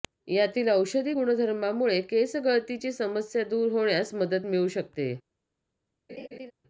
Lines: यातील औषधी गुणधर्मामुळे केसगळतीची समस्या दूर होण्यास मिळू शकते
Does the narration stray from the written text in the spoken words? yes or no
yes